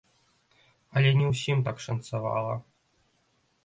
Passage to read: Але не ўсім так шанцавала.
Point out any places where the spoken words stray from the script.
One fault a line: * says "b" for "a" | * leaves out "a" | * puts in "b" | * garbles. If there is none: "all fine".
all fine